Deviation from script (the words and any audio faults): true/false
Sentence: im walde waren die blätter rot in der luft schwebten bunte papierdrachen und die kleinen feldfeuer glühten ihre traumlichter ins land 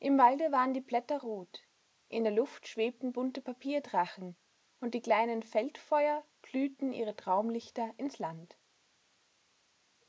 false